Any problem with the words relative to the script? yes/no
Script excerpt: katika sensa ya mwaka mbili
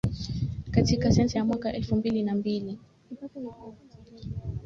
yes